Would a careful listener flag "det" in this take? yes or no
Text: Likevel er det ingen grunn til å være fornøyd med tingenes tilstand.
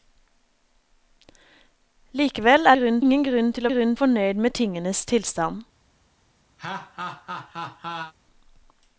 yes